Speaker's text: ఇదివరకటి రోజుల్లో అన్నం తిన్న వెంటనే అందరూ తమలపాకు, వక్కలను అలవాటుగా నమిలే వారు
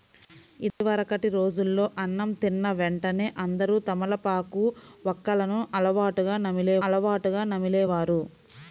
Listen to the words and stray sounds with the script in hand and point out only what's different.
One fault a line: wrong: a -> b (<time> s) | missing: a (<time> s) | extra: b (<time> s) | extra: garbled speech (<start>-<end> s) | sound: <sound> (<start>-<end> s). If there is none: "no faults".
sound: dropout (0.7-0.8 s)
extra: అలవాటుగా నమిలే (6.9 s)